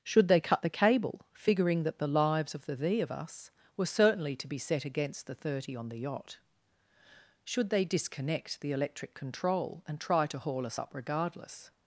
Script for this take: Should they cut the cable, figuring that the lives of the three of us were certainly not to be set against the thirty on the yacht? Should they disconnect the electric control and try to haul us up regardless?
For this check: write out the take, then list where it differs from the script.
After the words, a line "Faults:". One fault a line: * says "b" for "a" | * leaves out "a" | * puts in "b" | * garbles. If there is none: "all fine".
Should they cut the cable, figuring that the lives of the thee of us were certainly to be set against the thirty on the yacht? Should they disconnect the electric control and try to haul us up regardless?
Faults:
* says "thee" for "three"
* leaves out "not"